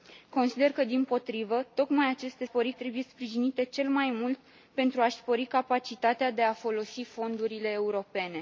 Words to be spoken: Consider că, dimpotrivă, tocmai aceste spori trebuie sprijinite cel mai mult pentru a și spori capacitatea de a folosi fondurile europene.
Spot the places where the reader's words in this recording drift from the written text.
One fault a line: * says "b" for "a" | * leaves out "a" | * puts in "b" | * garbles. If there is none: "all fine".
all fine